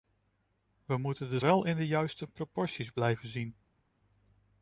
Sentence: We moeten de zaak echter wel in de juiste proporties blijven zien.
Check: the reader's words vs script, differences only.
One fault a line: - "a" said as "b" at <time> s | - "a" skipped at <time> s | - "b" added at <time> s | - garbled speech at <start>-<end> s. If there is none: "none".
- "zaak echter" skipped at 1.4 s